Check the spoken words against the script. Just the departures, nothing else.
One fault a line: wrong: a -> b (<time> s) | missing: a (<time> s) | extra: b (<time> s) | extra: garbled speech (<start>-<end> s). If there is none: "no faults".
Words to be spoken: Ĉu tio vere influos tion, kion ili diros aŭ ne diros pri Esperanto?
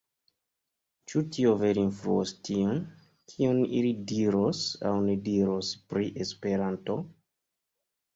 no faults